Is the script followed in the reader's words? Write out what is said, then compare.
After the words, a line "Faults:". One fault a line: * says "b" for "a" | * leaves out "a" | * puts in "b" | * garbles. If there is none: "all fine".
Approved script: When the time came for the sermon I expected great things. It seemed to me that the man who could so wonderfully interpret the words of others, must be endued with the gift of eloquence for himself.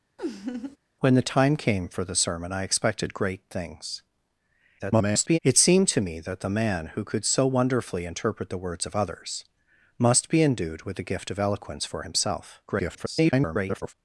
When the time came for the sermon I expected great things. [garbled] It seemed to me that the man who could so wonderfully interpret the words of others, must be endued with the gift of eloquence for himself. [garbled]
Faults:
* garbles
* garbles